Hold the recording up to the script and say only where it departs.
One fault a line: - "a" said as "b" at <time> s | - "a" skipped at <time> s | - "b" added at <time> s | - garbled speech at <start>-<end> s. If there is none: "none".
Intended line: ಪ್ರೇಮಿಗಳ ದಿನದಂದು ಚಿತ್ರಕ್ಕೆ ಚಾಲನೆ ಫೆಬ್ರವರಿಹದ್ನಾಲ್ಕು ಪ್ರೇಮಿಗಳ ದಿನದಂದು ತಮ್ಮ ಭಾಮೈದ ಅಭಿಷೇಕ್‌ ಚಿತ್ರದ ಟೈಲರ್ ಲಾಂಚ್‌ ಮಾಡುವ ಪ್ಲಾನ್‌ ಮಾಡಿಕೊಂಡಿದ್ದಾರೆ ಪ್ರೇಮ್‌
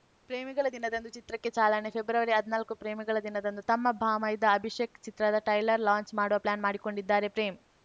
none